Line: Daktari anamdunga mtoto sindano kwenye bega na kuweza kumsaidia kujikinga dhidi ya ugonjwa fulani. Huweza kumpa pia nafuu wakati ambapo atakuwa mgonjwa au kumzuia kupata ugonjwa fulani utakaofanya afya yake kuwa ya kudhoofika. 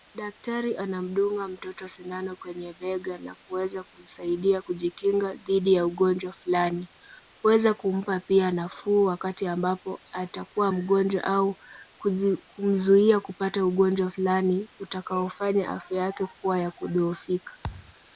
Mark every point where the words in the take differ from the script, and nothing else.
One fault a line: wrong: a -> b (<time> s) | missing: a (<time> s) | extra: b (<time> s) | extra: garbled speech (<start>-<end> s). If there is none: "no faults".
no faults